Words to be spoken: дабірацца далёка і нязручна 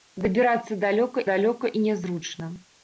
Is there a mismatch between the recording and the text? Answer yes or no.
yes